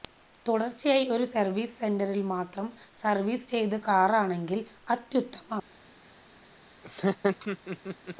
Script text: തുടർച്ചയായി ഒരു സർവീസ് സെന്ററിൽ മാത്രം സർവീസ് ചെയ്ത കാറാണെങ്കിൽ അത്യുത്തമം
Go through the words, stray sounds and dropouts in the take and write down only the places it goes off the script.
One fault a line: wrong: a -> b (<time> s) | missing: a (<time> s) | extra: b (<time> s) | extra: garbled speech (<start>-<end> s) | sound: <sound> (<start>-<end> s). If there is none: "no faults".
sound: laugh (6.8-8.2 s)